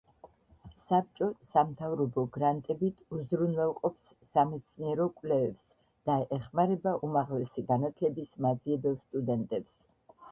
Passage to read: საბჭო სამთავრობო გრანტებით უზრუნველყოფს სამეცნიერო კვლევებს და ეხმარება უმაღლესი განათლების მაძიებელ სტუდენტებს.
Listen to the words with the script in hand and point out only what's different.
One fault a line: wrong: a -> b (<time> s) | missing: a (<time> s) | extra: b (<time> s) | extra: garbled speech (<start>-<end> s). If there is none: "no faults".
no faults